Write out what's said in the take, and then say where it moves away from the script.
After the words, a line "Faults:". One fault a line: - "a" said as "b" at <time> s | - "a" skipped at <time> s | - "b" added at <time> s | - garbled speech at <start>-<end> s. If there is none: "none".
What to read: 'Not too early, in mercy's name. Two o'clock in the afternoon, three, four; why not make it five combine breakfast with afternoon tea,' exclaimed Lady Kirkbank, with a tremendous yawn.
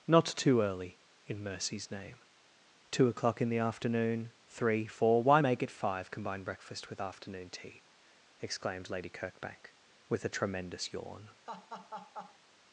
'Not too early, in mercy's name. Two o'clock in the afternoon, three, four; why make it five combine breakfast with afternoon tea,' exclaimed Lady Kirkbank, with a tremendous yawn.
Faults:
- "not" skipped at 5.4 s